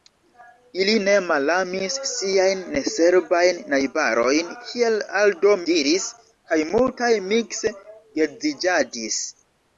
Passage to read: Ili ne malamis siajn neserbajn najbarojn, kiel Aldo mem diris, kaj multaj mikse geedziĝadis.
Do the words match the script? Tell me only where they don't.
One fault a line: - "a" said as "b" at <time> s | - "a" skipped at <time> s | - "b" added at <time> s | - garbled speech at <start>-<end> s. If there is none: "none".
- "mem" skipped at 5.5 s